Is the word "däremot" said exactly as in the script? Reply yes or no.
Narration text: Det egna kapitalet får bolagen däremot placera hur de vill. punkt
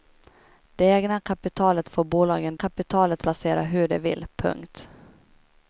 no